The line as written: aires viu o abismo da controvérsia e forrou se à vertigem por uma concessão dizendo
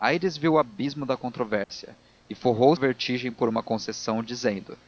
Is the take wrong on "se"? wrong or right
wrong